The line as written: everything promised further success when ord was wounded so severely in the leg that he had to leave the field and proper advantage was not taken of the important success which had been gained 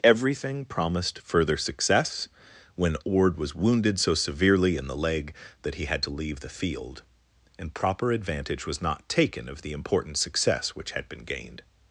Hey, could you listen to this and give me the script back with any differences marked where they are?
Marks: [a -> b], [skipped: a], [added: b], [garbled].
everything promised further success when ord was wounded so severely in the leg that he had to leave the field and proper advantage was not taken of the important success which had been gained